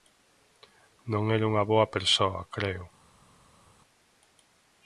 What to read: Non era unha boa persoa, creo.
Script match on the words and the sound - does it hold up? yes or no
yes